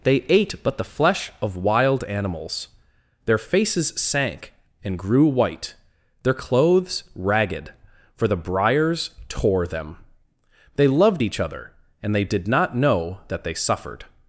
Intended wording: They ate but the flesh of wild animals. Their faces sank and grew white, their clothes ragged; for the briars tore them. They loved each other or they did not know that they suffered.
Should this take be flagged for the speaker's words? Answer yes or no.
yes